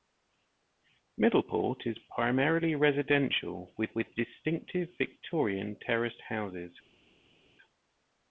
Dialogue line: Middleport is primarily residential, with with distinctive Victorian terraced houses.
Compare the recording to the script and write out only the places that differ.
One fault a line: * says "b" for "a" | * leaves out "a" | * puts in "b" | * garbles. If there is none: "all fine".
all fine